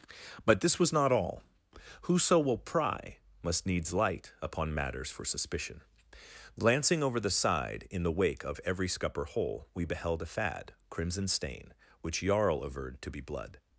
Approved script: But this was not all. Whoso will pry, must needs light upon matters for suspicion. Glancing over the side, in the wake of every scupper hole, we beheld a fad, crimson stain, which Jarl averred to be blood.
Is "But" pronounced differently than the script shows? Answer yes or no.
no